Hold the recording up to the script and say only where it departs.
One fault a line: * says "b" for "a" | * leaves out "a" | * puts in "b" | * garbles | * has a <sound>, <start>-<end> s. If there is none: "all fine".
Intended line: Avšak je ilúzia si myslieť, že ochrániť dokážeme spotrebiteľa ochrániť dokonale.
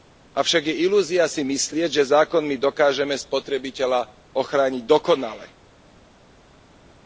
* says "zákonmi" for "ochrániť"